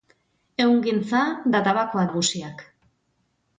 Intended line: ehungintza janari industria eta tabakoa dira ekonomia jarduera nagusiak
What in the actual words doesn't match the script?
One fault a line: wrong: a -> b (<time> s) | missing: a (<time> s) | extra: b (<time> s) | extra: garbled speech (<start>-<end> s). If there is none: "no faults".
missing: janari industria (1.2 s)
missing: dira ekonomia jarduera (2.0 s)